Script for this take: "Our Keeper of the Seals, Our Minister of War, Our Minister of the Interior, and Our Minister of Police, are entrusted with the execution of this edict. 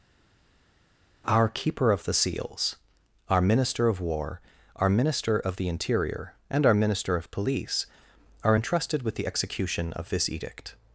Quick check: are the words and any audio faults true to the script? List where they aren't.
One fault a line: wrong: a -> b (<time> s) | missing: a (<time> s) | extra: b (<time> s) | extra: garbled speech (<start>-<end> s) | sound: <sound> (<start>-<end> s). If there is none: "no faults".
no faults